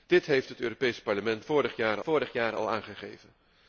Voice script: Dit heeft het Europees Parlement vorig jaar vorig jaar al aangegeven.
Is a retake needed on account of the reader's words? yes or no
no